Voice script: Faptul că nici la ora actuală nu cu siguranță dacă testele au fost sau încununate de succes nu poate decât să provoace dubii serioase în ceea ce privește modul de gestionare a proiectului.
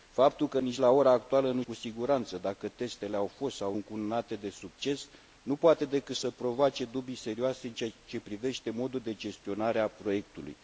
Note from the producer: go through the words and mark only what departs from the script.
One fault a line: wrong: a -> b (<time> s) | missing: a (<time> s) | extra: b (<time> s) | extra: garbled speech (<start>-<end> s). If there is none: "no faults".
no faults